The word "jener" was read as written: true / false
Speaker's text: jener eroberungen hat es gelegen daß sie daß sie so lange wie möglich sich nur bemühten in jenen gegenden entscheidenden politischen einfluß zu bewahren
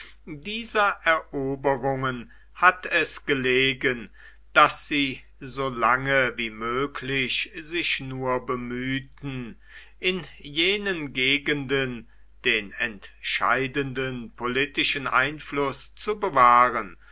false